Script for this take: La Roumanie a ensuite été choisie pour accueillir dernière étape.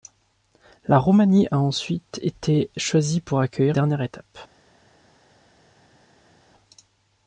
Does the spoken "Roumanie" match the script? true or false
true